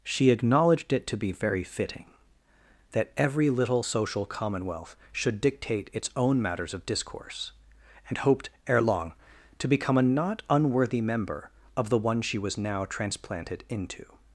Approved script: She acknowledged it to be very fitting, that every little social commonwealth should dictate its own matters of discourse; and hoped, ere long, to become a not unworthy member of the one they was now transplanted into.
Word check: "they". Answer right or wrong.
wrong